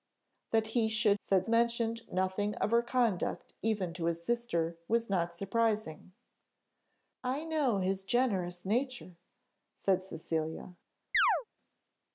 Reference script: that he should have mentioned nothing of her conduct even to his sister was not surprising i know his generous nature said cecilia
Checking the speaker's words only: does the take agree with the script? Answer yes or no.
no